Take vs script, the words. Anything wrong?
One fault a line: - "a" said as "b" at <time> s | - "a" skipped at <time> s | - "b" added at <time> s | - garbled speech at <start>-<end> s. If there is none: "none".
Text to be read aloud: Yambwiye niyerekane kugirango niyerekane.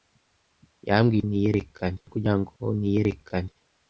none